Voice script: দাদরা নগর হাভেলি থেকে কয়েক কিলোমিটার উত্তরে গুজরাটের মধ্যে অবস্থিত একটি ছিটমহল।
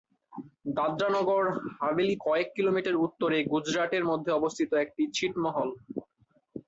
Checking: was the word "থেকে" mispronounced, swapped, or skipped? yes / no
yes